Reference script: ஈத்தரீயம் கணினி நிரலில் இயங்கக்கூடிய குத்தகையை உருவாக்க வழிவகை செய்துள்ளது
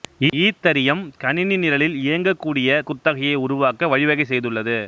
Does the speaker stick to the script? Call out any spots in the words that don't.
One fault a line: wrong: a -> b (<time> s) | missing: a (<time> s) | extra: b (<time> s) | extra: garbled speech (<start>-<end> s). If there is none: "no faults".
no faults